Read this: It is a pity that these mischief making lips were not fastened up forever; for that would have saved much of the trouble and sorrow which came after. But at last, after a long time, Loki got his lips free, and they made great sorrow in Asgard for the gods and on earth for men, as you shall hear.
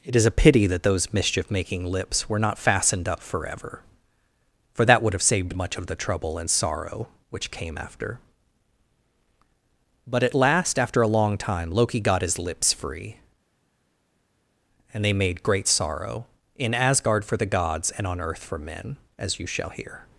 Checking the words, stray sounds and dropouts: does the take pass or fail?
fail